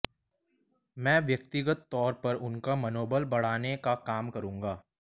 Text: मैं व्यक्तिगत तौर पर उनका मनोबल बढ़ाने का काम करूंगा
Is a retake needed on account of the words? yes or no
no